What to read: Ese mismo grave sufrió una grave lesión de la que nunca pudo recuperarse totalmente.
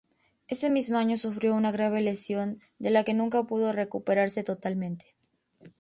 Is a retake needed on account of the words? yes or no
yes